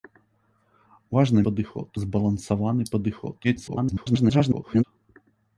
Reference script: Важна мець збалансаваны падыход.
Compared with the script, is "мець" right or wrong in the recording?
wrong